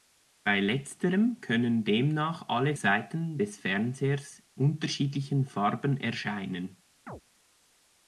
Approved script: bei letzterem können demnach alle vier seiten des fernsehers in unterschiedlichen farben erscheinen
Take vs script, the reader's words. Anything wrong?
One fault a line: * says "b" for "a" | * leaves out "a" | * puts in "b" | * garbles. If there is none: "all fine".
* leaves out "vier"
* leaves out "in"